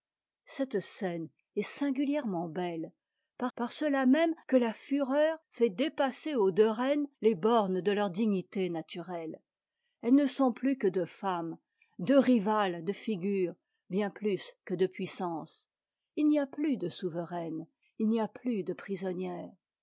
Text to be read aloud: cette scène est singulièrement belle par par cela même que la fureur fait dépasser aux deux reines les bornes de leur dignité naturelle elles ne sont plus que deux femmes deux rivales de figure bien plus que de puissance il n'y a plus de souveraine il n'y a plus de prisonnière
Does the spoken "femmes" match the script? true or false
true